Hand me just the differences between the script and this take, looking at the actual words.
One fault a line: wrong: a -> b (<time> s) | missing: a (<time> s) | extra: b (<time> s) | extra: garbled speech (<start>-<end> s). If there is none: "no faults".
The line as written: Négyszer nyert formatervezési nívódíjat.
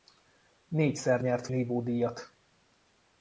missing: formatervezési (1.5 s)